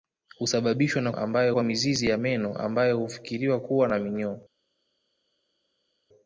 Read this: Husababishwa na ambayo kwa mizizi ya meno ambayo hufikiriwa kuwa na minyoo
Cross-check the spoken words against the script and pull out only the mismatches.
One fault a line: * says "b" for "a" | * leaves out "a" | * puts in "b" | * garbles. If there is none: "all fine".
all fine